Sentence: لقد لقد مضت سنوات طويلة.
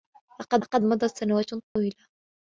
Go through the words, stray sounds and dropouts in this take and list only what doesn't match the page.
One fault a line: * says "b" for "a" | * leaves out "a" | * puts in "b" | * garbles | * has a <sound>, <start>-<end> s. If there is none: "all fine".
* has a dropout, 1.7-1.8 s